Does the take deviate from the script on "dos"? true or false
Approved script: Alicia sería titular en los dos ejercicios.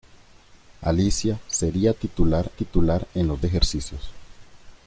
true